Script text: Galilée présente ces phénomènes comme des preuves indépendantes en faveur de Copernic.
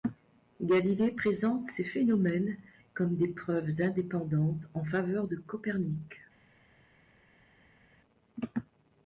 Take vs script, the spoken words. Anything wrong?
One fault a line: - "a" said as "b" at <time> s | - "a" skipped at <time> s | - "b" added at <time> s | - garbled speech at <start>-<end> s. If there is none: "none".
none